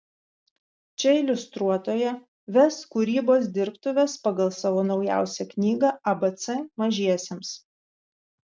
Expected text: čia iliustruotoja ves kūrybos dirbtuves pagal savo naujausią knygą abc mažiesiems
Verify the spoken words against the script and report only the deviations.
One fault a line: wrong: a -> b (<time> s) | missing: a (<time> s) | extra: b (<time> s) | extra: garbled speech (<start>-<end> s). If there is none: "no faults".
no faults